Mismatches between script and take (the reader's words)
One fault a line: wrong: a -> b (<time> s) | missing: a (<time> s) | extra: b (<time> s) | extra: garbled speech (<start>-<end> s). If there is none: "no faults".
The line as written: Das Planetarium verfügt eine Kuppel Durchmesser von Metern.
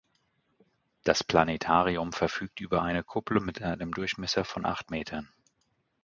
extra: über (2.6 s)
extra: mit einem (3.4 s)
extra: acht (4.7 s)